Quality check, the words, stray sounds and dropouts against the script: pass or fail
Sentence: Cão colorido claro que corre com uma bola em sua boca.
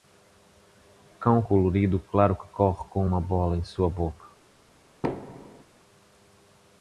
fail